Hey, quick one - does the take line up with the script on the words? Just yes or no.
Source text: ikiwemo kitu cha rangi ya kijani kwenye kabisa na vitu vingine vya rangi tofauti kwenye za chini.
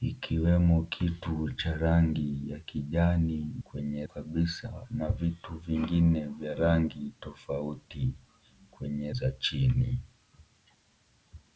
yes